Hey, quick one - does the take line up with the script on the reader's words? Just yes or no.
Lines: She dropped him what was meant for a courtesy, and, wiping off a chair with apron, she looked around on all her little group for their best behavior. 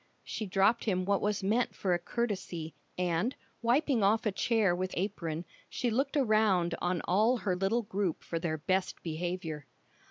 yes